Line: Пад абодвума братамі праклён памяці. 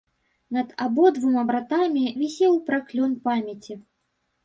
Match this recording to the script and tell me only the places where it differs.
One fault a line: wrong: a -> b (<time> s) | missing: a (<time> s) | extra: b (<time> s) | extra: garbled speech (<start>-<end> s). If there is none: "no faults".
wrong: Пад -> Над (0.6 s)
extra: вісеў (2.2 s)